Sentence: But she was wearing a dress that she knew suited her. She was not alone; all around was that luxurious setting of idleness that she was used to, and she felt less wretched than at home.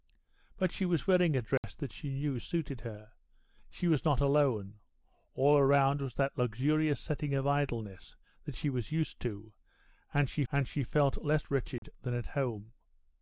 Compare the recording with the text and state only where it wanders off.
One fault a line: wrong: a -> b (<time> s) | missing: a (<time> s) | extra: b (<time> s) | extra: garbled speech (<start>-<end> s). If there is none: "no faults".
extra: and she (10.5 s)